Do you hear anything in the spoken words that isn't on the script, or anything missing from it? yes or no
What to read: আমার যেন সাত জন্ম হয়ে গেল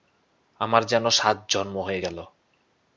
no